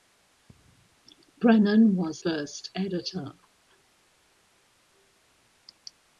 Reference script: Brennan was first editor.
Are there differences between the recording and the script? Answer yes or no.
no